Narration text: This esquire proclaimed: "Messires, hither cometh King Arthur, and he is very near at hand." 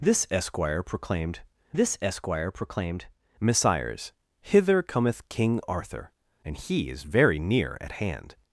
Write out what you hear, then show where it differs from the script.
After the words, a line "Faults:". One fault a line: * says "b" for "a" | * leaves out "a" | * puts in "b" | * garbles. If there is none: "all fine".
This esquire proclaimed this esquire proclaimed: "Messires, hither cometh King Arthur, and he is very near at hand."
Faults:
* puts in "this esquire proclaimed"